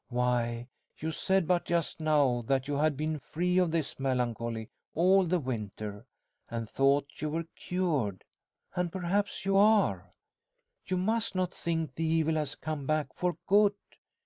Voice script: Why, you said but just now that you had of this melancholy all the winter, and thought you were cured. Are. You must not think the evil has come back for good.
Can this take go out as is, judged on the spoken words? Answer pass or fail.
fail